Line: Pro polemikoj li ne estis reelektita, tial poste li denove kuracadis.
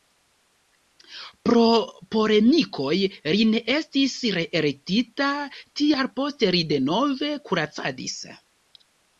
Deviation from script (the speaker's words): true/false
false